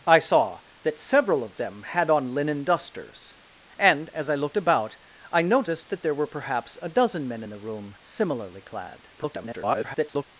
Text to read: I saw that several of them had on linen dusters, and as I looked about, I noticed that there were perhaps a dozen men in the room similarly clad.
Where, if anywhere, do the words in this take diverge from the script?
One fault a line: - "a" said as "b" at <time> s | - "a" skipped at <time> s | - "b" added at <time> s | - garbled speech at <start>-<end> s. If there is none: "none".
- garbled speech at 9.2-10.2 s